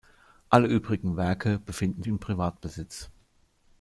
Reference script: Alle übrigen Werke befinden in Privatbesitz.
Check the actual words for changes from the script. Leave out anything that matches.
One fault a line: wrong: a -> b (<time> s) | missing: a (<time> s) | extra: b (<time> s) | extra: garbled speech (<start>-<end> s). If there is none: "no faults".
no faults